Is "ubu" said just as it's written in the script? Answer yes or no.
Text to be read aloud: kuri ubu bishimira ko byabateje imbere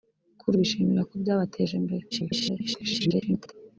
no